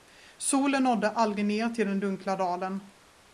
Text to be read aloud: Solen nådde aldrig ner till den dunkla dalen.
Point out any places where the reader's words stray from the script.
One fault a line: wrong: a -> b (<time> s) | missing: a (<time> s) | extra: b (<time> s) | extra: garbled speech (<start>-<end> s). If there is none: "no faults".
no faults